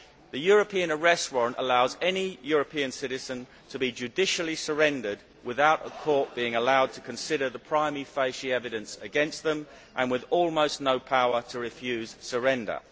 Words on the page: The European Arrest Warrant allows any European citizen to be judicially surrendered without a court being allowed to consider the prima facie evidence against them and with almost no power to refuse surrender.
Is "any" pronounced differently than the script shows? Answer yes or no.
no